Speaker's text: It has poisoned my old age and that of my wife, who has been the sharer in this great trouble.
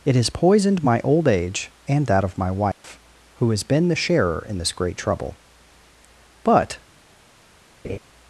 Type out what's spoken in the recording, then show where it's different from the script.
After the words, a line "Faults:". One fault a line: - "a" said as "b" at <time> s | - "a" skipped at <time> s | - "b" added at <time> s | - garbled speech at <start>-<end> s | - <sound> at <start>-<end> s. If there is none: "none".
It has poisoned my old age and that of my wife, who has been the sharer in this great trouble. But
Faults:
- dropout at 2.7-2.8 s
- "But" added at 6.4 s
- laugh at 7.8-8.0 s